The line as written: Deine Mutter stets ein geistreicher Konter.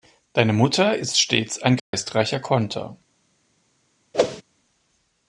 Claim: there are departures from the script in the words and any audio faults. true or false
true